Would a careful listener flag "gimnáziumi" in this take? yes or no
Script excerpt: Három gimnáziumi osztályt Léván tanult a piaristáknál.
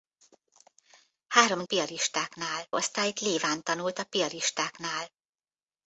yes